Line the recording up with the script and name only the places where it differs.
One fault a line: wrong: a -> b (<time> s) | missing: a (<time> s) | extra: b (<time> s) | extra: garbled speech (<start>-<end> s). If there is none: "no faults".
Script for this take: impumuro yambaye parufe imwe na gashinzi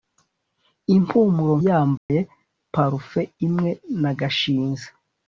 no faults